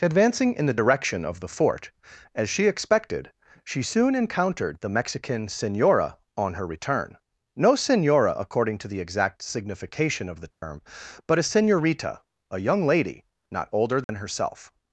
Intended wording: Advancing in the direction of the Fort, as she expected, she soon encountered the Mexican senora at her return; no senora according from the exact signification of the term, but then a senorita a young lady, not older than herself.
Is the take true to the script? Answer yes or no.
no